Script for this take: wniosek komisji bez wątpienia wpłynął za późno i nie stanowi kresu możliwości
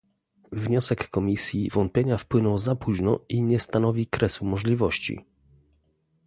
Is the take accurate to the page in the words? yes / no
no